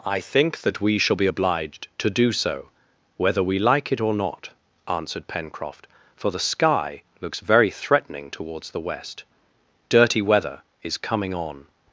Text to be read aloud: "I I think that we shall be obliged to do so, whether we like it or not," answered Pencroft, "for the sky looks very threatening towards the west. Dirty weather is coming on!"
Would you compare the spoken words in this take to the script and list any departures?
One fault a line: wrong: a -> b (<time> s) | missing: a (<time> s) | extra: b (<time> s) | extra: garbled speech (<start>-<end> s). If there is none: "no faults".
missing: I (0.2 s)